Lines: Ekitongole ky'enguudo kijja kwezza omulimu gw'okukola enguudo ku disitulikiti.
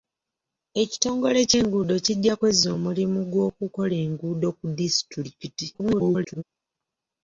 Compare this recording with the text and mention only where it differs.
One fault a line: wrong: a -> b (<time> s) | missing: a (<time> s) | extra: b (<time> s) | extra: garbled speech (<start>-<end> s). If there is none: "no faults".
extra: garbled speech (5.7-6.4 s)